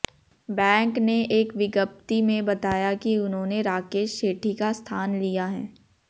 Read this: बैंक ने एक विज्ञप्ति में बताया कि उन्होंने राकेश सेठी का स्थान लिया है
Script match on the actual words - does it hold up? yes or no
yes